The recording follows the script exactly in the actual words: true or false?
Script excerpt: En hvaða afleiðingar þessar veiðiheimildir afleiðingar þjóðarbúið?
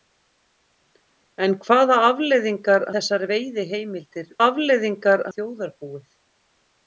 true